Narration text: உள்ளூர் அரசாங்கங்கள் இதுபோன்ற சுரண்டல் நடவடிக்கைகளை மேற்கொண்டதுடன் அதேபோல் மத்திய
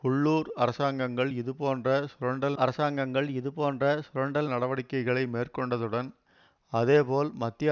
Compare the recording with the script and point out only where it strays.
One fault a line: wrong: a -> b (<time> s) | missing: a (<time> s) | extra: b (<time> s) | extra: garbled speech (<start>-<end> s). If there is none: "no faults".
extra: அரசாங்கங்கள் இதுபோன்ற சுரண்டல் (2.6 s)